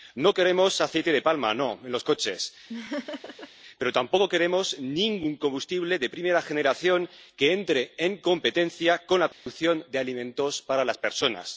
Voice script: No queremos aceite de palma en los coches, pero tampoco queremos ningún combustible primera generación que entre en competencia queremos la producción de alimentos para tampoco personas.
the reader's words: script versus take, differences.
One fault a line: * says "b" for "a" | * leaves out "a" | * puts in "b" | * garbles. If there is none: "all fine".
* puts in "de"
* says "con" for "queremos"
* says "las" for "tampoco"